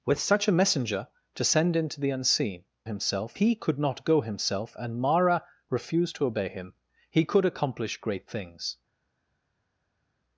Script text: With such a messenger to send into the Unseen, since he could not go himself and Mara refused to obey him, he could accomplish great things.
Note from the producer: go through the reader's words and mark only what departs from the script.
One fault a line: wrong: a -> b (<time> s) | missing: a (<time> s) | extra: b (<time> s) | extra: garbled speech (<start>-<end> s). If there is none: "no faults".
wrong: since -> himself (2.8 s)